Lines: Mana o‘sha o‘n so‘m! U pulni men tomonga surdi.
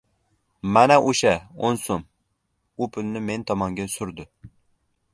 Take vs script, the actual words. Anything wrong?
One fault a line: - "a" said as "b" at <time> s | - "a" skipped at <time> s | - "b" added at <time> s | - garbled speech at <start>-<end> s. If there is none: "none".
none